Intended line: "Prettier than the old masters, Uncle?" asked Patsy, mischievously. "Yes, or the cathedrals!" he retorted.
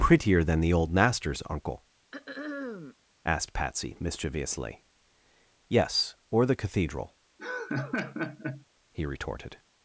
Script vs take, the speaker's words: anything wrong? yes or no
yes